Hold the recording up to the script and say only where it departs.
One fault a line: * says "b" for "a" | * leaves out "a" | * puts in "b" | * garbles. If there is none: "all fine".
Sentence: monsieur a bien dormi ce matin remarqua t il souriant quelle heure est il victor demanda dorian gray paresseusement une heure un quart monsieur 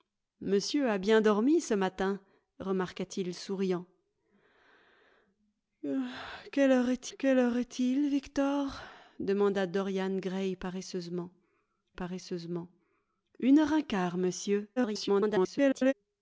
* puts in "quelle heure est"
* puts in "paresseusement"
* garbles